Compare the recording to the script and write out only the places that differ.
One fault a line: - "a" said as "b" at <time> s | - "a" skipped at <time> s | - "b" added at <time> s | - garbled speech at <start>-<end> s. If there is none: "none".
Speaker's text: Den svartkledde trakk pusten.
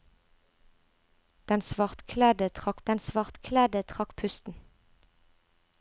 - "den svartkledde trakk" added at 2.9 s